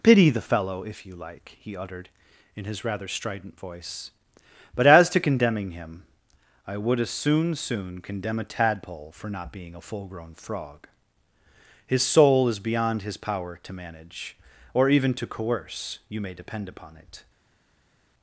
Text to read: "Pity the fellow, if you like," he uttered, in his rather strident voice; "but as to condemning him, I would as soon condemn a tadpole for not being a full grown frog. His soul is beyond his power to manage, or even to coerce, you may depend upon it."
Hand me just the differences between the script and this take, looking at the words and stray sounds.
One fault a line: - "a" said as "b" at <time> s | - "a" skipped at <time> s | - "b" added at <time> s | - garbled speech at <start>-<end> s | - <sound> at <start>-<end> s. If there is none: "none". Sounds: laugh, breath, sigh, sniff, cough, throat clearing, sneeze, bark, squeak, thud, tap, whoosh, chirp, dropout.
- "soon" added at 7.5 s